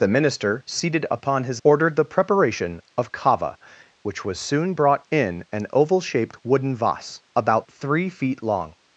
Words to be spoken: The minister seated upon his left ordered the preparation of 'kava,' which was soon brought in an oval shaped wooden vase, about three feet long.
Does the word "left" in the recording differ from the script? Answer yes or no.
yes